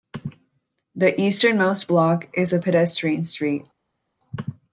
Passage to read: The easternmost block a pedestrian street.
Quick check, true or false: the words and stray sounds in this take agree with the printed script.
false